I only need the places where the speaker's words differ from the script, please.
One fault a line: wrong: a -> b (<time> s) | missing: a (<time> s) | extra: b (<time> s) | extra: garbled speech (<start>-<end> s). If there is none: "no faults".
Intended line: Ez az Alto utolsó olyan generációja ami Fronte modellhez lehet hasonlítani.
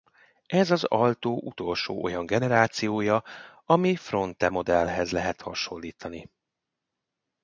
no faults